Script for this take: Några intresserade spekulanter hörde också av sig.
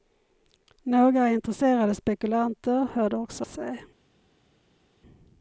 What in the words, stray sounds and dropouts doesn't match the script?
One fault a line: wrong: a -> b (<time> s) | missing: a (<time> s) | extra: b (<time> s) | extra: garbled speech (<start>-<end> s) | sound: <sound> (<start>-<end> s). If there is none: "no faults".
missing: av (3.5 s)